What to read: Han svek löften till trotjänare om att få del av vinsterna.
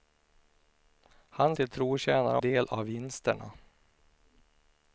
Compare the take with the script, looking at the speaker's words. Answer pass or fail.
fail